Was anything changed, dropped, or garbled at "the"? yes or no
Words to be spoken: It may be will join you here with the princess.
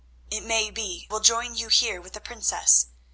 no